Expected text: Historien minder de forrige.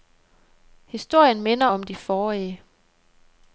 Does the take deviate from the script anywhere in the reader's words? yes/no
yes